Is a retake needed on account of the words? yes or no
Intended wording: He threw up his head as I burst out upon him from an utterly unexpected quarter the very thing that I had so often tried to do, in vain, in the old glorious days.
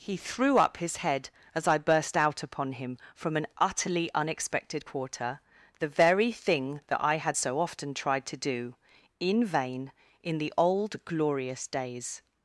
no